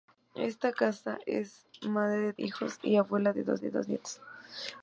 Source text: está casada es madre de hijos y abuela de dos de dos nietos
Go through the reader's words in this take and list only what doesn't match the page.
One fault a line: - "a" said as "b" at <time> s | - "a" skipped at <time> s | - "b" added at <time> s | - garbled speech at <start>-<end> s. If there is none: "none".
none